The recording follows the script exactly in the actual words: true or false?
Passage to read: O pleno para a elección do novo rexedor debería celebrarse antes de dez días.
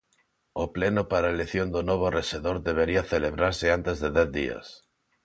true